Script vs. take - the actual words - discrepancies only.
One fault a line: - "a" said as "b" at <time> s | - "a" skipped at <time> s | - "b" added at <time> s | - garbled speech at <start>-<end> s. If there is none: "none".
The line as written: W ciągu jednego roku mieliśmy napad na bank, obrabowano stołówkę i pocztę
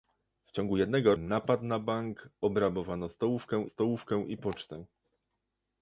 - "roku mieliśmy" skipped at 1.1 s
- "stołówkę" added at 3.7 s